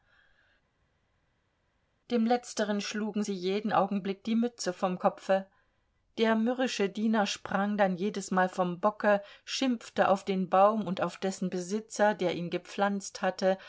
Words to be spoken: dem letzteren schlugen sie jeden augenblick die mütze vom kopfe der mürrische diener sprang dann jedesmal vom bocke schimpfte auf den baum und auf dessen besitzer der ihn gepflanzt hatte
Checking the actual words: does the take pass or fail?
pass